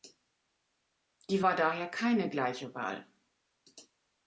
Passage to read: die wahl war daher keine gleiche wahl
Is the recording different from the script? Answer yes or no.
yes